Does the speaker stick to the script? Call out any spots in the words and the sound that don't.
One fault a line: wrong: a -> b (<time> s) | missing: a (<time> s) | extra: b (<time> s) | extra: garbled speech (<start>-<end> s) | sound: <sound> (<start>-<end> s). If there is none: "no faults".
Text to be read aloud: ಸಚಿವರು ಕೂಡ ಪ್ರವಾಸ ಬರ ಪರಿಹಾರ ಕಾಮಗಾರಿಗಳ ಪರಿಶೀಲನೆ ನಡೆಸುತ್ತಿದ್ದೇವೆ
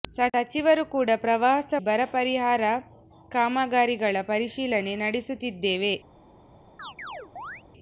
sound: chirp (6.8-7.6 s)